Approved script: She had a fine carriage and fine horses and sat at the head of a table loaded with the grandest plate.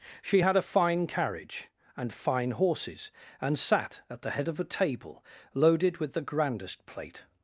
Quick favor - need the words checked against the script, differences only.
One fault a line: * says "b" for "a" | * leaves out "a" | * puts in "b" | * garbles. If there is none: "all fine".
all fine